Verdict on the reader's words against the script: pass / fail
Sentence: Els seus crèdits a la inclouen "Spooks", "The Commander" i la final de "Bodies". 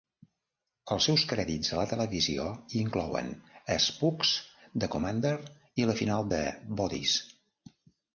fail